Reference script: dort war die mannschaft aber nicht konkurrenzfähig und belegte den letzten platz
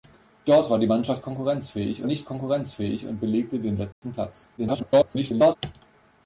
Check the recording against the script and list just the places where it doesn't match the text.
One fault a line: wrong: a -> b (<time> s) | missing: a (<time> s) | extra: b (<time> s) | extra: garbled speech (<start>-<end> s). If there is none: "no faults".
wrong: aber -> konkurrenzfähig (1.2 s)
extra: garbled speech (4.6-5.6 s)